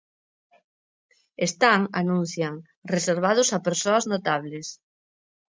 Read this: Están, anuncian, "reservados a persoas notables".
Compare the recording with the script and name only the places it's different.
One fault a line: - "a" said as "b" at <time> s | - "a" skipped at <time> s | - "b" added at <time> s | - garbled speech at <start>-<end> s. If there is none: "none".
none